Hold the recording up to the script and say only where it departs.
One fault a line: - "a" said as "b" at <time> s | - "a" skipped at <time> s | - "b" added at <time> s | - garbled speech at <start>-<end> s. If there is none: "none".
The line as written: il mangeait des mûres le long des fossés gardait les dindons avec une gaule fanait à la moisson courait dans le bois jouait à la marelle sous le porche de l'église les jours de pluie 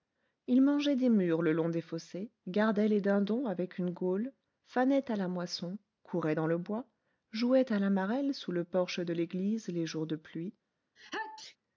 none